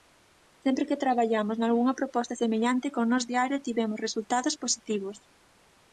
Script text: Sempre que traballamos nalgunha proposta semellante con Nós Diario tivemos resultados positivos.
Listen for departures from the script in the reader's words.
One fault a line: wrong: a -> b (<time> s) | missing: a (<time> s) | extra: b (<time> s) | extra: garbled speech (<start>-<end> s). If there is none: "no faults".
no faults